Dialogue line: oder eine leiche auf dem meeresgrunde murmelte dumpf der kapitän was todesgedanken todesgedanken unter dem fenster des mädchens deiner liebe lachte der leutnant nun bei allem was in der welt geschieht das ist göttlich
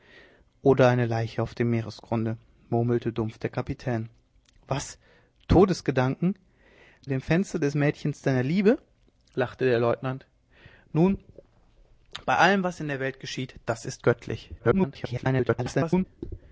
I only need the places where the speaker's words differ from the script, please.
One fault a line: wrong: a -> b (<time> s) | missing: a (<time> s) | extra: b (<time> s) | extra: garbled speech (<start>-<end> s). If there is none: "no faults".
missing: todesgedanken unter (6.3 s)
extra: garbled speech (14.6-16.1 s)